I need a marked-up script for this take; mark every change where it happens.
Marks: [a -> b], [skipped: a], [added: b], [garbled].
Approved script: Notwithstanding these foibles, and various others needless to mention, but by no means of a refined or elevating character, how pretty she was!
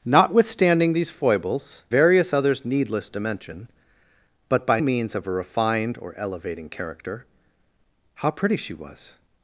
Notwithstanding these foibles, [skipped: and] various others needless to mention, but by [skipped: no] means of a refined or elevating character, how pretty she was!